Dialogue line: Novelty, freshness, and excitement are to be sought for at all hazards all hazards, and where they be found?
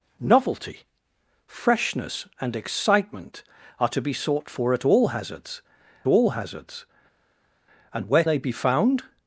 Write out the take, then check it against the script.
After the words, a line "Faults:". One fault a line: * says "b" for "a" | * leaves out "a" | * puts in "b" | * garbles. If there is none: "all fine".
Novelty, freshness, and excitement are to be sought for at all hazards all hazards, and where they be found?
Faults:
all fine